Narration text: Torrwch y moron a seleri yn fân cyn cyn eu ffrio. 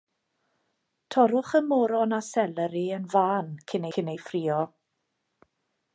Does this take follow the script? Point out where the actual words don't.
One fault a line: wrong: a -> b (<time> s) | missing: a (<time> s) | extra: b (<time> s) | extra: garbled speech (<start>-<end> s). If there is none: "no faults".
no faults